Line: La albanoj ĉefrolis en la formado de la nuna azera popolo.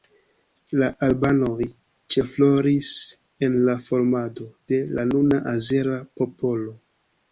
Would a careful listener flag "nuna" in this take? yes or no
no